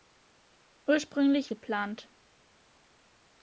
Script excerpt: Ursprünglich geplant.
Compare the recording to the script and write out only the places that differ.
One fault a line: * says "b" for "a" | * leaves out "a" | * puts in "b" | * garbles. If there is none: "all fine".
all fine